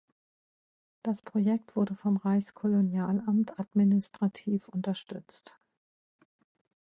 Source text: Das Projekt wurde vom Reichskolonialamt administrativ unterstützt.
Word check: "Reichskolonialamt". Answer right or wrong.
right